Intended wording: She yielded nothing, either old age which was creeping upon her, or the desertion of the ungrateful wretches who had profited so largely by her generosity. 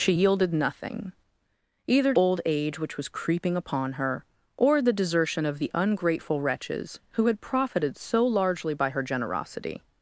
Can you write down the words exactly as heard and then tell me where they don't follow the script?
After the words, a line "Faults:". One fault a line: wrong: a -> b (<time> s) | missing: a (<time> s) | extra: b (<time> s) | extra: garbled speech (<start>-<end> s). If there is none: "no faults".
She yielded nothing, either old age which was creeping upon her, or the desertion of the ungrateful wretches who had profited so largely by her generosity.
Faults:
no faults